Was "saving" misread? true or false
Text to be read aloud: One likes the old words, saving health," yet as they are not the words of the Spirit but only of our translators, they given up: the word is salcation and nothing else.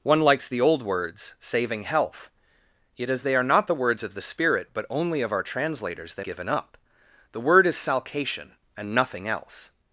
false